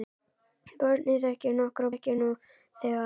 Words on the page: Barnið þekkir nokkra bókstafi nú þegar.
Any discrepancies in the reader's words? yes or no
yes